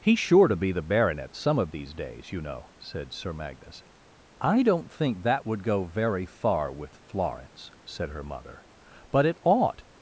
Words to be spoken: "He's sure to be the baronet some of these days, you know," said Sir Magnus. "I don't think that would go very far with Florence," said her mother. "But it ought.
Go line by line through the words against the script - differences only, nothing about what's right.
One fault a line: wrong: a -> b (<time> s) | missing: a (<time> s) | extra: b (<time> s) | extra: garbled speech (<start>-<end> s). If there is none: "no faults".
no faults